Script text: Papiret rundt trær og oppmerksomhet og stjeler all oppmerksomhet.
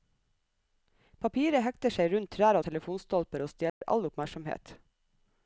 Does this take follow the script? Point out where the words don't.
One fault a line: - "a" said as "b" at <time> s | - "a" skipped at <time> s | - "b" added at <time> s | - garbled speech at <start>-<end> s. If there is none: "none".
- "hekter seg" added at 1.6 s
- "oppmerksomhet" said as "telefonstolper" at 2.7 s